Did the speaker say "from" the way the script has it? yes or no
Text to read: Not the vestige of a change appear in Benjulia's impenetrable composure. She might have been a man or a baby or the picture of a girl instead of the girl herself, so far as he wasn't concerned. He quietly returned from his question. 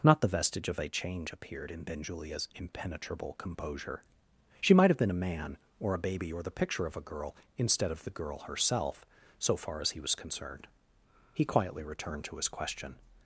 no